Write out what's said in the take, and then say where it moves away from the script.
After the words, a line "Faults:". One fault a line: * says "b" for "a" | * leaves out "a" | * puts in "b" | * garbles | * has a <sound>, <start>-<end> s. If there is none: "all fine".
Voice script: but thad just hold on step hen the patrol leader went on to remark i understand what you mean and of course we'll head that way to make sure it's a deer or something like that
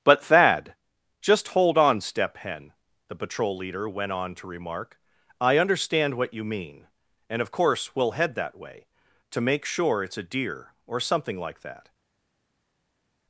but thad just hold on step hen the patrol leader went on to remark i understand what you mean and of course we'll head that way to make sure it's a deer or something like that
Faults:
all fine